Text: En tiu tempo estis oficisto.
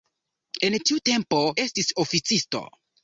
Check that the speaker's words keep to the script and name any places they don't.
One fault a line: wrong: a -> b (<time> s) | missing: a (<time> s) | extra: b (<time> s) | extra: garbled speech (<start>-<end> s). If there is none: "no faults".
no faults